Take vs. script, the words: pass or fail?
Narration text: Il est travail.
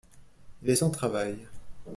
fail